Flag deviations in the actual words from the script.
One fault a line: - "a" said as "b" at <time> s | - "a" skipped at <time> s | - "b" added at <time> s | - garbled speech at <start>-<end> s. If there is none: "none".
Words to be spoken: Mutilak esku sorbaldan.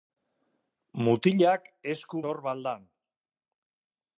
none